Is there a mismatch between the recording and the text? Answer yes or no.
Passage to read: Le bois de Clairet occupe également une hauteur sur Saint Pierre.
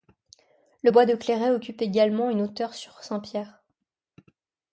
no